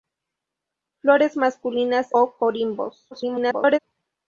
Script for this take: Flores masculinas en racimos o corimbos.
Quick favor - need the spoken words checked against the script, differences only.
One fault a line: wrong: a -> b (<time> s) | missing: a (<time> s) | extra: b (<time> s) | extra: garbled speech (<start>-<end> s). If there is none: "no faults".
missing: en racimos (2.1 s)
extra: garbled speech (3.1-3.8 s)